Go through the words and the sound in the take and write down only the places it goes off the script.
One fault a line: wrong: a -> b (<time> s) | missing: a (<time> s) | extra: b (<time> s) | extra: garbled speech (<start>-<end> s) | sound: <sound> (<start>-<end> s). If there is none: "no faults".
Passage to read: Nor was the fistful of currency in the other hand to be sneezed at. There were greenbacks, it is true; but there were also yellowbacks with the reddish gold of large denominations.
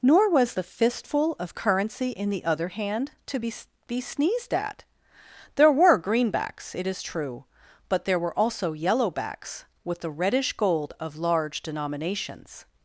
extra: be (3.9 s)